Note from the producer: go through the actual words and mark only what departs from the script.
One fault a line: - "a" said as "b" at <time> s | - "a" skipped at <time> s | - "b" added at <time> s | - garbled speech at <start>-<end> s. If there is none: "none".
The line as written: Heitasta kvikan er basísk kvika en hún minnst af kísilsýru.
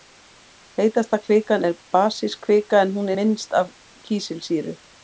none